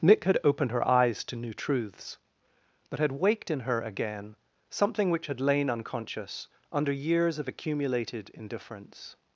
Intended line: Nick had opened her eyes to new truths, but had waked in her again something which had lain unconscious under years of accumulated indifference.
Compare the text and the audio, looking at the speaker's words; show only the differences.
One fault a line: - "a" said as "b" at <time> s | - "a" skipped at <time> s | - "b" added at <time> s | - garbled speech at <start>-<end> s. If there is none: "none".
none